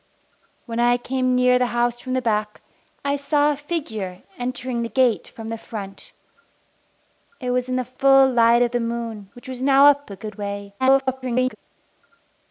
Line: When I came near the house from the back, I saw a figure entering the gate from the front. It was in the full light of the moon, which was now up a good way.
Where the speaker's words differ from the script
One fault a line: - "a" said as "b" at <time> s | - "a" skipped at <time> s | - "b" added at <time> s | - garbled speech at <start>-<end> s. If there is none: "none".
- garbled speech at 10.8-11.6 s